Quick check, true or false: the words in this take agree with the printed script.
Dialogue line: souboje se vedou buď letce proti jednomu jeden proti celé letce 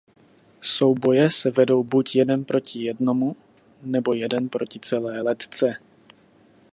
false